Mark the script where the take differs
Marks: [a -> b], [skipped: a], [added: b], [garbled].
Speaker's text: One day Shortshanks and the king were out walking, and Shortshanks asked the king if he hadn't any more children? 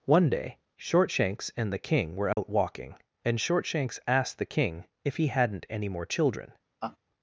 One day Shortshanks and the king were out walking, and Shortshanks asked the king if he hadn't any more children?